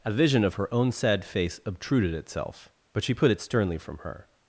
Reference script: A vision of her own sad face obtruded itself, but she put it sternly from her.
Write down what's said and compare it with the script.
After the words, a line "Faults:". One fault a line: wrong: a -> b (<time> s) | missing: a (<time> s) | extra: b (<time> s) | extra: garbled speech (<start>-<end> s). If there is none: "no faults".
A vision of her own sad face obtruded itself, but she put it sternly from her.
Faults:
no faults